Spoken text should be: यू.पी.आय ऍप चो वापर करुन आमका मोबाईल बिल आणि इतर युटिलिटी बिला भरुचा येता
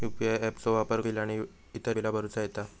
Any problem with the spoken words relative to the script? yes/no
yes